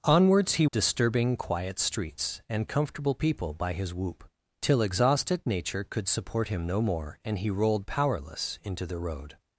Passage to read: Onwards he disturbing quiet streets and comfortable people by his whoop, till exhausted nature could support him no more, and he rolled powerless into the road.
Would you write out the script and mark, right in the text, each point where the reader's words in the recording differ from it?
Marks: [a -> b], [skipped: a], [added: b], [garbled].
Onwards he disturbing quiet streets and comfortable people by his whoop, till exhausted nature could support him no more, and he rolled powerless into the road.